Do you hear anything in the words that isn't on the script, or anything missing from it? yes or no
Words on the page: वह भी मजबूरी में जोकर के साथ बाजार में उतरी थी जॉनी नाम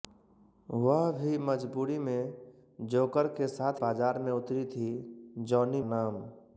no